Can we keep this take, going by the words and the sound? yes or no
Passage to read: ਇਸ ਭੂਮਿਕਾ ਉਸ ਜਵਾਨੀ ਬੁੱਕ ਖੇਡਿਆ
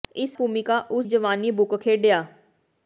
yes